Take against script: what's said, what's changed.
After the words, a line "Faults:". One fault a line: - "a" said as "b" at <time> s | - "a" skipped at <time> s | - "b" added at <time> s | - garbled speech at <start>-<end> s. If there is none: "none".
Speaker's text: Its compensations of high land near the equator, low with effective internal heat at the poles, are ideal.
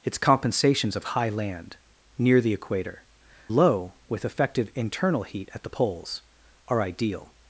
Its compensations of high land near the equator, low with effective internal heat at the poles, are ideal.
Faults:
none